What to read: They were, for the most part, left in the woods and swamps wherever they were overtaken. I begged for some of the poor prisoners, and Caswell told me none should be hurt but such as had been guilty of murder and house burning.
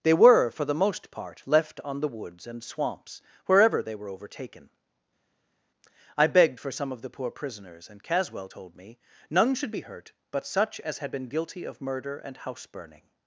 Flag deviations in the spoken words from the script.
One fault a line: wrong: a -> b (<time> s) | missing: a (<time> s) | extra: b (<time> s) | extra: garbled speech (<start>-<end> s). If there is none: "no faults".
wrong: in -> on (1.8 s)